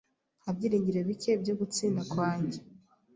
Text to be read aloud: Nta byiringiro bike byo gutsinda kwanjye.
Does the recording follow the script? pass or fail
pass